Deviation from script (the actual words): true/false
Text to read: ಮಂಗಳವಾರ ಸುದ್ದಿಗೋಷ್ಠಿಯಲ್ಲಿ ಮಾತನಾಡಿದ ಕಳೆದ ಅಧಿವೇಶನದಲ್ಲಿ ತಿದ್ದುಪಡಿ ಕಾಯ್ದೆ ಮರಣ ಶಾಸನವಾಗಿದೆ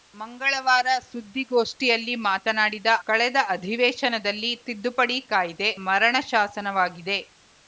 false